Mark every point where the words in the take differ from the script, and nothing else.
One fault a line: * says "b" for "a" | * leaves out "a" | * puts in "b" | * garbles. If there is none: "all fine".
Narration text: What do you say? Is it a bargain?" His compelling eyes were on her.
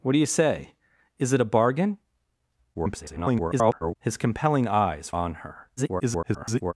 * garbles
* leaves out "were"
* garbles